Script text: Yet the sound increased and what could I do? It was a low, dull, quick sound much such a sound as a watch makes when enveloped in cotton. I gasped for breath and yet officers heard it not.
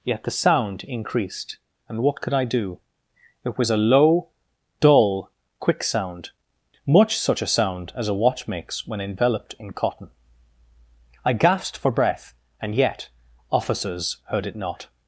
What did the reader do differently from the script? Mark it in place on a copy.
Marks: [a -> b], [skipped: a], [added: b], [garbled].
Yet the sound increased and what could I do? It was a low, dull, quick sound much such a sound as a watch makes when enveloped in cotton. I gasped for breath and yet officers heard it not.